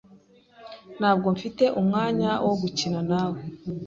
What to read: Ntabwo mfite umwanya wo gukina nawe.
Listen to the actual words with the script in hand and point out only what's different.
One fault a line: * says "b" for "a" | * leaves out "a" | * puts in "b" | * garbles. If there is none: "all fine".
all fine